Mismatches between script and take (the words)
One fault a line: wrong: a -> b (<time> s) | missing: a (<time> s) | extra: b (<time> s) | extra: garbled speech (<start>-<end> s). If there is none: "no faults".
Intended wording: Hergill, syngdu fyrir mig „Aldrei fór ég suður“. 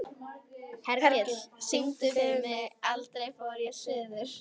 no faults